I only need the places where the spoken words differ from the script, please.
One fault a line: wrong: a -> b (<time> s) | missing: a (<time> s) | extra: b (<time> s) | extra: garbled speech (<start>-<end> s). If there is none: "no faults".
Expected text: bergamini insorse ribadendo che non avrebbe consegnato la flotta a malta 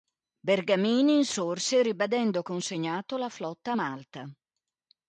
missing: che non avrebbe (2.4 s)